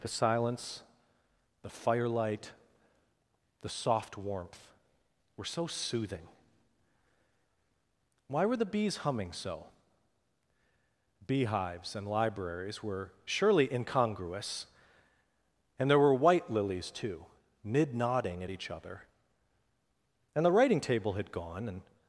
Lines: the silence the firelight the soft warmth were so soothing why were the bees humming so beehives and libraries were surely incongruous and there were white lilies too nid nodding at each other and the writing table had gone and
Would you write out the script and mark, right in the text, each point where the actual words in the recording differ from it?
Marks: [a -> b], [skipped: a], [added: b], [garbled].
the silence the firelight the soft warmth were so soothing why were the bees humming so beehives and libraries were surely incongruous and there were white lilies too nid nodding at each other and the writing table had gone and